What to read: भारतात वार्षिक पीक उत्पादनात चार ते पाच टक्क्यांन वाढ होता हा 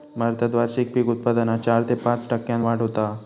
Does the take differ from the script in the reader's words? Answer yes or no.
no